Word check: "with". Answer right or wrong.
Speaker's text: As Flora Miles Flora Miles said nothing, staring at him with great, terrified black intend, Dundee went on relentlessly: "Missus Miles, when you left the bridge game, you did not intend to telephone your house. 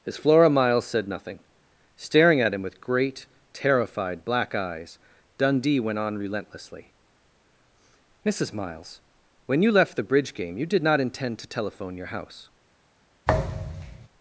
right